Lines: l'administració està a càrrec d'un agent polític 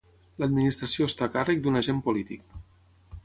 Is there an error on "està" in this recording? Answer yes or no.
no